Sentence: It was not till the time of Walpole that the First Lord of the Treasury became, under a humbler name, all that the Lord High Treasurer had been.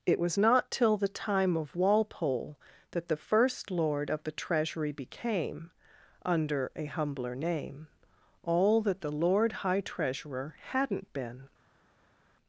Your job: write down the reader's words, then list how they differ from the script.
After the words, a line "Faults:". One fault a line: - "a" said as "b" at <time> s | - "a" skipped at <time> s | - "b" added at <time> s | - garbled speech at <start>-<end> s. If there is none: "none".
It was not till the time of Walpole that the First Lord of the Treasury became, under a humbler name, all that the Lord High Treasurer hadn't been.
Faults:
- "had" said as "hadn't" at 10.7 s